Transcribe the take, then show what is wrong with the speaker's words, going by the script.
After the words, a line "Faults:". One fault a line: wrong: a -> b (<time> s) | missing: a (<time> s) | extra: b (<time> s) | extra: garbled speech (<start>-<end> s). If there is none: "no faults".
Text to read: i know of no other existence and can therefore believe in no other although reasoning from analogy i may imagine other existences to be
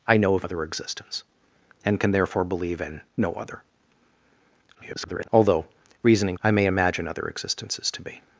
i know of other existence and can therefore believe in no other [garbled] although reasoning i may imagine other existences to be
Faults:
missing: no (0.5 s)
extra: garbled speech (4.7-5.3 s)
missing: from analogy (6.4 s)